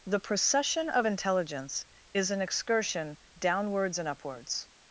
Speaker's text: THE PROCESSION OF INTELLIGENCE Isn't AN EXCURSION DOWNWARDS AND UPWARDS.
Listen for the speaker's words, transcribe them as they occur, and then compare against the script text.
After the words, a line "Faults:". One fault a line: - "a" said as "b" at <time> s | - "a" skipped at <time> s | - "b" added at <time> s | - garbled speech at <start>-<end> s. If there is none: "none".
THE PROCESSION OF INTELLIGENCE IS AN EXCURSION DOWNWARDS AND UPWARDS.
Faults:
- "Isn't" said as "IS" at 2.1 s